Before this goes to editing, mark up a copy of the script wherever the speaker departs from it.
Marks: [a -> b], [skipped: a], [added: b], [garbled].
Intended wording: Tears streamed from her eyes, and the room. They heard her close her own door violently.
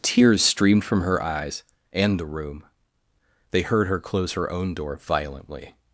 Tears streamed from her eyes, and the room. They heard her close her own door violently.